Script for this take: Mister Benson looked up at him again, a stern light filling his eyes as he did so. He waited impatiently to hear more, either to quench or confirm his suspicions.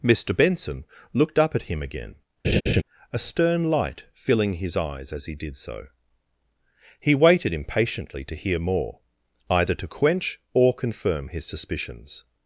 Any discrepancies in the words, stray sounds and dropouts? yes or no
yes